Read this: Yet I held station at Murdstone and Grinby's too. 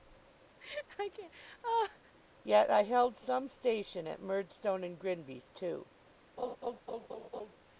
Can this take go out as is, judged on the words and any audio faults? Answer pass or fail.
fail